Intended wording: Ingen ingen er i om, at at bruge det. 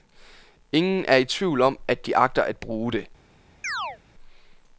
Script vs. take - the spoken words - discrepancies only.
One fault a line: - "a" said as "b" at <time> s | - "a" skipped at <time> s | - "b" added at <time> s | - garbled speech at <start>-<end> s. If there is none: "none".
- "ingen" skipped at 1.1 s
- "tvivl" added at 1.2 s
- "de agter" added at 2.0 s